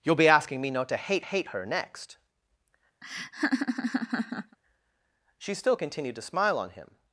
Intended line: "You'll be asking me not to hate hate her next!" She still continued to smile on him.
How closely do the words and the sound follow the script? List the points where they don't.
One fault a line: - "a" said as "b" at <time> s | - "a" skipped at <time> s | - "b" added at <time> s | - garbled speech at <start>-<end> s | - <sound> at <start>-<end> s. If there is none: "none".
- laugh at 3.0-4.6 s